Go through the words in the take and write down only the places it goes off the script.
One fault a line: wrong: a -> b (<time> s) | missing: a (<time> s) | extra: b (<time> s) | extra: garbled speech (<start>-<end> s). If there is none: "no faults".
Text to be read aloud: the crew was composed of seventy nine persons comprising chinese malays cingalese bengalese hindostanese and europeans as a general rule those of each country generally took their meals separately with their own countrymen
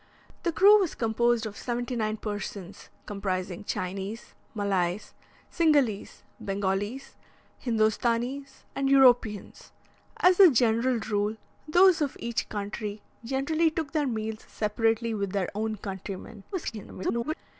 extra: garbled speech (16.5-17.3 s)